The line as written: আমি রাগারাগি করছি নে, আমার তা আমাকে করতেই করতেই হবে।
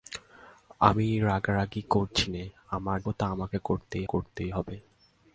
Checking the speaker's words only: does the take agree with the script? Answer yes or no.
yes